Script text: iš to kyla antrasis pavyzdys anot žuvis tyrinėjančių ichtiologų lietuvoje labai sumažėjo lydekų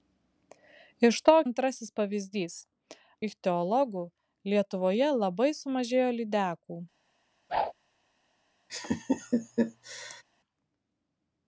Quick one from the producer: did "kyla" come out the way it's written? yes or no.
no